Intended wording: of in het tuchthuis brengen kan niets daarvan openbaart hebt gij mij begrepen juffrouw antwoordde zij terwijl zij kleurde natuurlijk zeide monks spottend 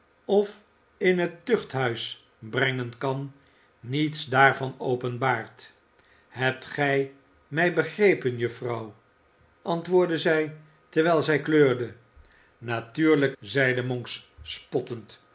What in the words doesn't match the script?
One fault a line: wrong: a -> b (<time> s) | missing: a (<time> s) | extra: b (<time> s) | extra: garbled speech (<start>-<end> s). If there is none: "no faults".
no faults